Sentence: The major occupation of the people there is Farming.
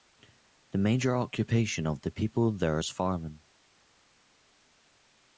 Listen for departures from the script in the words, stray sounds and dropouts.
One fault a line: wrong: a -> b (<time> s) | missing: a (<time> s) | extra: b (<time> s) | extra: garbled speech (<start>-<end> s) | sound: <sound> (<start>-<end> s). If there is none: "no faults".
no faults